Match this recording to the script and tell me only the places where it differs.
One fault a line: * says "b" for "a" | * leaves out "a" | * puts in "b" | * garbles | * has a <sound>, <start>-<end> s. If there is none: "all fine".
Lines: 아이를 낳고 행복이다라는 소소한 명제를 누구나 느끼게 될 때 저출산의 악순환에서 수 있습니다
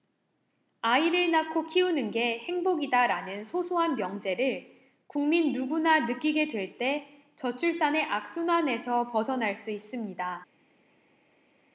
* puts in "키우는 게"
* puts in "국민"
* puts in "벗어날"